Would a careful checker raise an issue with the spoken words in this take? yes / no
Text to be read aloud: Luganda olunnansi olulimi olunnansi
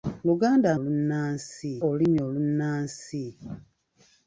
no